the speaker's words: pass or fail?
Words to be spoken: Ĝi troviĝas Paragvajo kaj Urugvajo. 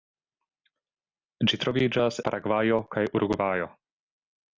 pass